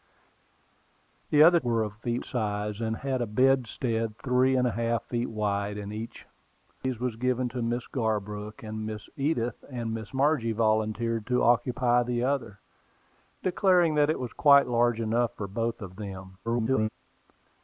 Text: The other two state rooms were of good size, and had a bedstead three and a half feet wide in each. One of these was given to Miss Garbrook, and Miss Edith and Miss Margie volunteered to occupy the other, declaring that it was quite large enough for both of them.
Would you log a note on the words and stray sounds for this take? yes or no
yes